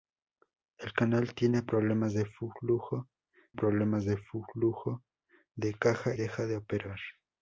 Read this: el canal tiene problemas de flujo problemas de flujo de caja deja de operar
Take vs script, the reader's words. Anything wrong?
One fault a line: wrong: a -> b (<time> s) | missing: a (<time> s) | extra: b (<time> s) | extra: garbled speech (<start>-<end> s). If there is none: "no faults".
no faults